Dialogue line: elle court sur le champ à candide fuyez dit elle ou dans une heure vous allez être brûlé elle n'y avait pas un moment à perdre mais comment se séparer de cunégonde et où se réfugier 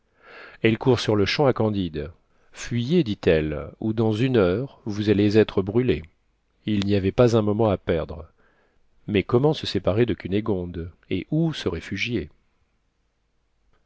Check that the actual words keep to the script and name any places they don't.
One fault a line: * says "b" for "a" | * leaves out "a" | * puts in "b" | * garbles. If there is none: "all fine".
* says "il" for "elle"